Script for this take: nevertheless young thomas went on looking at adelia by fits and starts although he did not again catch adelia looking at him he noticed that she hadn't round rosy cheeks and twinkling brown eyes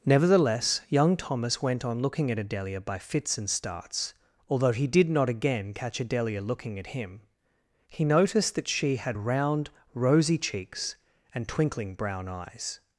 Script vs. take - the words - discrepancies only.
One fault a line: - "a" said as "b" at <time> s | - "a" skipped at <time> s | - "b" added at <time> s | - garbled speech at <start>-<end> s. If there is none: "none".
- "hadn't" said as "had" at 9.0 s